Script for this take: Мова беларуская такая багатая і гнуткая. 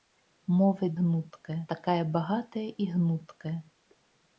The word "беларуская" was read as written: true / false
false